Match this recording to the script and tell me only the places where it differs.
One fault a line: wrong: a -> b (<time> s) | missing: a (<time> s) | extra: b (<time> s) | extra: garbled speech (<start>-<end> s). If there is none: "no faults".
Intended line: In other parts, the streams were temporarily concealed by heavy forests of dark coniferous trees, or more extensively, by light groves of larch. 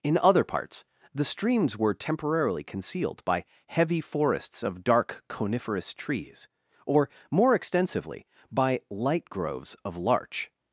no faults